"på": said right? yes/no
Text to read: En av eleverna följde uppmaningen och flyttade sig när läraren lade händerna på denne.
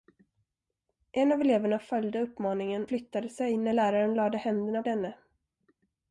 no